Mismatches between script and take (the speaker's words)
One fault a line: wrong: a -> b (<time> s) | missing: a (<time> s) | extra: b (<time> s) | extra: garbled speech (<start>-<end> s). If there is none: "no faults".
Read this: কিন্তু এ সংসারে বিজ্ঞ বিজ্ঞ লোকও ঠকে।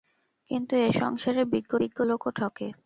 no faults